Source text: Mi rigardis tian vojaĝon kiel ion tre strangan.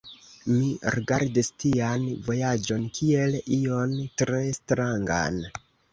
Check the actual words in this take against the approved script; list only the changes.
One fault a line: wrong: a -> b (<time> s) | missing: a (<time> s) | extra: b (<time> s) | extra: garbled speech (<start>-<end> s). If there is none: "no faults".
no faults